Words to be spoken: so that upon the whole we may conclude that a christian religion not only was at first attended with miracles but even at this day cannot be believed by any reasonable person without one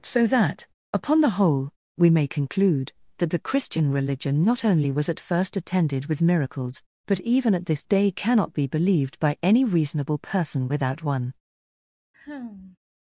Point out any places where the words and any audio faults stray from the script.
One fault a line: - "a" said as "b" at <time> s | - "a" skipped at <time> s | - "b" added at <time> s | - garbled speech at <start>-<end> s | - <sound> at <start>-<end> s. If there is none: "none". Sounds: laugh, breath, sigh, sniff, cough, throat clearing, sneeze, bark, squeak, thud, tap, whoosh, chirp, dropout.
- "a" said as "the" at 3.3 s
- sigh at 12.1-12.8 s